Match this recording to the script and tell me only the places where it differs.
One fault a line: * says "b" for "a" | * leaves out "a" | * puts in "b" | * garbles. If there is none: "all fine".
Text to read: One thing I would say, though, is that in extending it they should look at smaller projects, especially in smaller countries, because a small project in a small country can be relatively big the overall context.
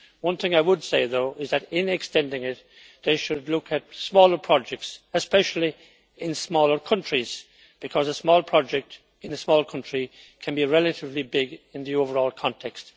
* puts in "in"